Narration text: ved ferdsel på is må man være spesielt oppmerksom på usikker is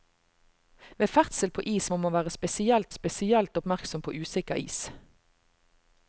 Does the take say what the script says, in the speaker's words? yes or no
no